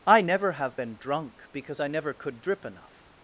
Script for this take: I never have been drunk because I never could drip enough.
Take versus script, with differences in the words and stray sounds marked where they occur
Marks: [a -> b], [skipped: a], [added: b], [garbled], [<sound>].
I never have been drunk because I never could drip enough.